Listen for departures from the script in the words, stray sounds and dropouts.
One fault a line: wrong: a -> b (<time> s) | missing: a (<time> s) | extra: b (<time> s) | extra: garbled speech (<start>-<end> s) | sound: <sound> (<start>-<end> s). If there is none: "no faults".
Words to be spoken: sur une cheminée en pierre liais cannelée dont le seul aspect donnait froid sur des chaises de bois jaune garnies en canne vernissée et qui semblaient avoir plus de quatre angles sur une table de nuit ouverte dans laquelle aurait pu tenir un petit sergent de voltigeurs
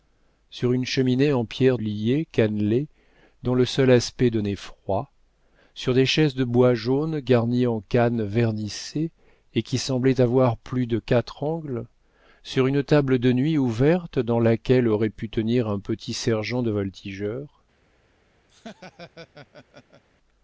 sound: laugh (18.5-20.0 s)